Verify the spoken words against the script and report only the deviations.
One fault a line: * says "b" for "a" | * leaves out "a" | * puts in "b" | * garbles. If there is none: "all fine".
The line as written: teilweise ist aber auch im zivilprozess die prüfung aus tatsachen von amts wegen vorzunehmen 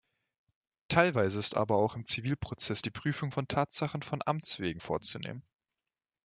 * says "von" for "aus"